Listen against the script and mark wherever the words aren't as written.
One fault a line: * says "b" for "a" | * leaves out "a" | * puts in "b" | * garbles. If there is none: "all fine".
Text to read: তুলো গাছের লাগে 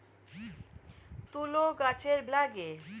all fine